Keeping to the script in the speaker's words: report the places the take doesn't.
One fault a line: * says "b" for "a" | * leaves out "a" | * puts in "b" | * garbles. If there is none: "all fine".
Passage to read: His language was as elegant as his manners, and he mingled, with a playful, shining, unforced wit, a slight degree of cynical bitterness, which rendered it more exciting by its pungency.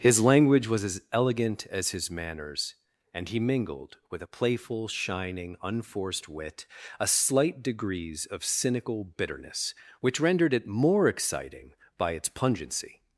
* says "degrees" for "degree"